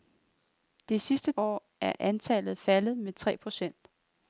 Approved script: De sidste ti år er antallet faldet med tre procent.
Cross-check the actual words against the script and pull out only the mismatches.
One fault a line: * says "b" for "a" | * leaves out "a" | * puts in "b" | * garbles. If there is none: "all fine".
* leaves out "ti"